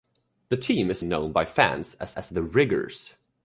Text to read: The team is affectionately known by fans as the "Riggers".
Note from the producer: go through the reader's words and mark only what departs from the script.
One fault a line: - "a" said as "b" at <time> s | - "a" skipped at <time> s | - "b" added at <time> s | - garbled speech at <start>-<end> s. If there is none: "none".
- "affectionately" skipped at 1.0 s
- "as" added at 2.2 s